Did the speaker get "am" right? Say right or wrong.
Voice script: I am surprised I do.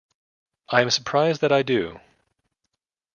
right